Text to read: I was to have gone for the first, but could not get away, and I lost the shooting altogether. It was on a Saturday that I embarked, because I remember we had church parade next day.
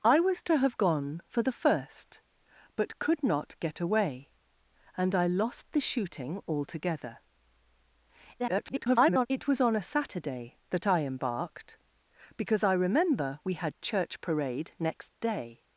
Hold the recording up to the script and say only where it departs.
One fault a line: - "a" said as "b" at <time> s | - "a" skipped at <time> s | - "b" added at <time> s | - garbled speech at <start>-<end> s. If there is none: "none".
- garbled speech at 8.4-9.3 s